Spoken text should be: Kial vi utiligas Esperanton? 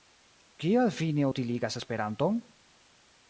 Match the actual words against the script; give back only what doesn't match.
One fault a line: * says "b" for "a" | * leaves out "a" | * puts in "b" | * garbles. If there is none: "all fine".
* puts in "ne"